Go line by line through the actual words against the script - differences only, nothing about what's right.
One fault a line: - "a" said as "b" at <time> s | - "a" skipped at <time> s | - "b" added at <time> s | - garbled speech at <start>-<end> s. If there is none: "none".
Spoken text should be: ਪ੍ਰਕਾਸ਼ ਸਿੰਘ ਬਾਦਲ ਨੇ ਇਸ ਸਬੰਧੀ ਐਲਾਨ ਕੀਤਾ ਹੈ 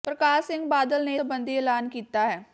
- "ਇਸ" skipped at 1.1 s